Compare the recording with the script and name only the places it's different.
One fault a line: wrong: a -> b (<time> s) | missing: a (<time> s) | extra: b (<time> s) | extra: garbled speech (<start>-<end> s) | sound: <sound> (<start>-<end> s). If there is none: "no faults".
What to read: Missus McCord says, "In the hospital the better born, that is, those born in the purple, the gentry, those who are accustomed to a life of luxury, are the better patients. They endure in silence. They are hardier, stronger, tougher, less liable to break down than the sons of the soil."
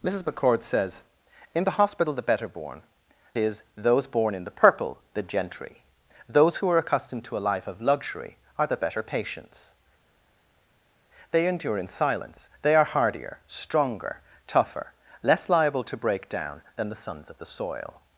missing: that (2.8 s)